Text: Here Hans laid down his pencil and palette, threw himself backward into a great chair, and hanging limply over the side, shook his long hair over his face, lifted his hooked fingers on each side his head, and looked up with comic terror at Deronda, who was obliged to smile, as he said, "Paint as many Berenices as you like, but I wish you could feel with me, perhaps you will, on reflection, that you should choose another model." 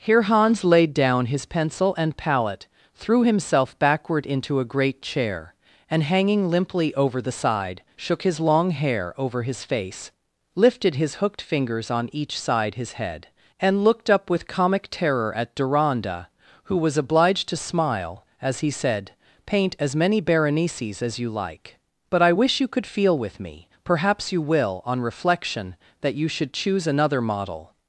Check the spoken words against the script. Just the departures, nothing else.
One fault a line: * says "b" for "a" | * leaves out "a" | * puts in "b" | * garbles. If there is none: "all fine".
all fine